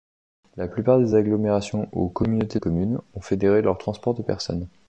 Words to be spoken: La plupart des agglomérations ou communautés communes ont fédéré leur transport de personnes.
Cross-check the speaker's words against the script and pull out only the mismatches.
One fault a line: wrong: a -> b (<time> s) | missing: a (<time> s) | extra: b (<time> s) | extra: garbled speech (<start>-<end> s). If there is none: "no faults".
no faults